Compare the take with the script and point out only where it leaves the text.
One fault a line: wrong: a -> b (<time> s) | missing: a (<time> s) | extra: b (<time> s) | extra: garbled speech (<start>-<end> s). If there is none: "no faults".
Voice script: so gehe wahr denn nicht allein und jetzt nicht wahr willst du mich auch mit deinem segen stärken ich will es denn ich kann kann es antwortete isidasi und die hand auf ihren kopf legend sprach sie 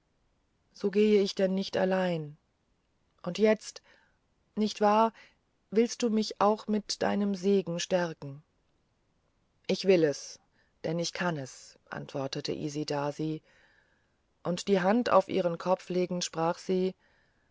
wrong: wahr -> ich (1.2 s)
missing: kann (11.4 s)